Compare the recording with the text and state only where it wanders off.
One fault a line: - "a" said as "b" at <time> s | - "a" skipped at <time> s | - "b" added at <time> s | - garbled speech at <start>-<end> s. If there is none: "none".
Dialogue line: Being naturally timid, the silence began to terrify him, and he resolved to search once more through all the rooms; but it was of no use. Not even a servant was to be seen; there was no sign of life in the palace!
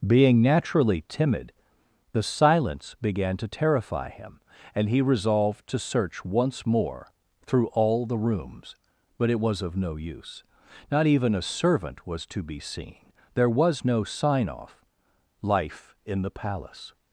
- "of" said as "off" at 14.5 s